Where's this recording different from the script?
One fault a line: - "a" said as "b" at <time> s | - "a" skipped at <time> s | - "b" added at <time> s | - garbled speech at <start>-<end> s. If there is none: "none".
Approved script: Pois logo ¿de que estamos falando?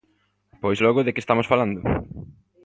none